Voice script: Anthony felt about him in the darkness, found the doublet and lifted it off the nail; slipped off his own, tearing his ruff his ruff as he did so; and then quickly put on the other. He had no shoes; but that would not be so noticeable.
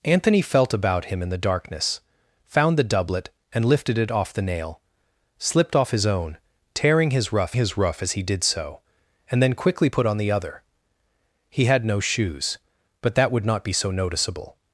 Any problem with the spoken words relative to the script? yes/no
no